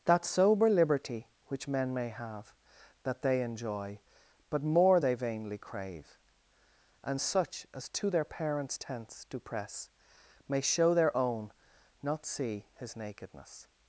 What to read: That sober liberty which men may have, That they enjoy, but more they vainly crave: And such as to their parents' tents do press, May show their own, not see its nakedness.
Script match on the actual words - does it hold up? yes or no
no